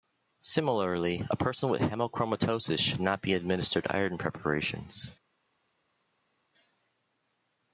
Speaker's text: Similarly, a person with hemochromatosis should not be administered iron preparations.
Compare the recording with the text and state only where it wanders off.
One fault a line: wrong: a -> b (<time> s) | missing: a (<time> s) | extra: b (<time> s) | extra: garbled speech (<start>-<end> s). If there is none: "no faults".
no faults